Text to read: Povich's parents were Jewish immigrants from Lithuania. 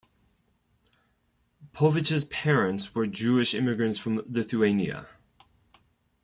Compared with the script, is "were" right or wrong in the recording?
right